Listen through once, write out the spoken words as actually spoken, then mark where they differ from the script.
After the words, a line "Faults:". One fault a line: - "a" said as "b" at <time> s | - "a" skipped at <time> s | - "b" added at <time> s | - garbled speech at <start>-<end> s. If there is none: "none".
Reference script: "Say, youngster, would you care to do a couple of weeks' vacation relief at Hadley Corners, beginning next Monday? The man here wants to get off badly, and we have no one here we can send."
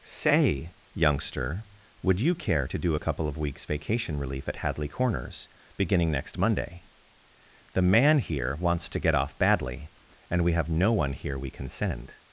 "Say, youngster, would you care to do a couple of weeks' vacation relief at Hadley Corners, beginning next Monday? The man here wants to get off badly, and we have no one here we can send."
Faults:
none